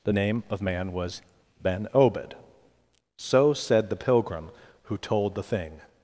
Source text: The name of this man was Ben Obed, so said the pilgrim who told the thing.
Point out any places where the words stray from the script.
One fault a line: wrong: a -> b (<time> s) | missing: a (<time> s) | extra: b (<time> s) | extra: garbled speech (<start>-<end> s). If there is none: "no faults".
missing: this (0.6 s)